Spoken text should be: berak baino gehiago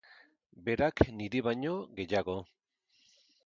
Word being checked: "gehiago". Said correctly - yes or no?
yes